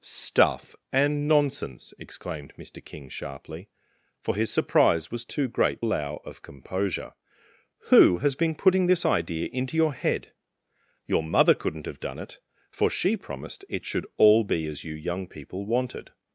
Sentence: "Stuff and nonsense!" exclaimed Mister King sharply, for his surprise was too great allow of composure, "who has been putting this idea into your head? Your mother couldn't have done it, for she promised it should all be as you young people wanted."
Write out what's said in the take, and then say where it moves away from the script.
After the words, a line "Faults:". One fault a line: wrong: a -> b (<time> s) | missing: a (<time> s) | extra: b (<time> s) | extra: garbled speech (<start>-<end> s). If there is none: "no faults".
"Stuff and nonsense!" exclaimed Mister King sharply, for his surprise was too great allow of composure, "who has been putting this idea into your head? Your mother couldn't have done it, for she promised it should all be as you young people wanted."
Faults:
no faults